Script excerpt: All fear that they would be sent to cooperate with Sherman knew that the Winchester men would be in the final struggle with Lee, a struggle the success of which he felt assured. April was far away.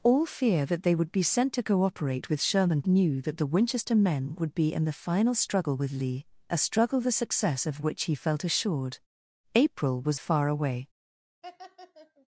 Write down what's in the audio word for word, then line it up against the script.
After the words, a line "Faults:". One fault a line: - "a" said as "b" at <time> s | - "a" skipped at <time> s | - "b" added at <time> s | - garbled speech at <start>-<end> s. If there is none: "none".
All fear that they would be sent to cooperate with Sherman knew that the Winchester men would be in the final struggle with Lee, a struggle the success of which he felt assured. April was far away.
Faults:
none